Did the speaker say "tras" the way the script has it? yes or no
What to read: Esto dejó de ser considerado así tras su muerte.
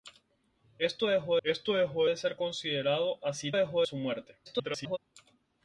no